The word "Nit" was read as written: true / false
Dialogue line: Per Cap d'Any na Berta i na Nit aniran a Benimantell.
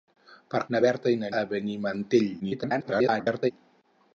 false